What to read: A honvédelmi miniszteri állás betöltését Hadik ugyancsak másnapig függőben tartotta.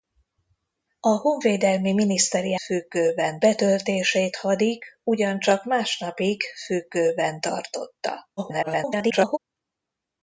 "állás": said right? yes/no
no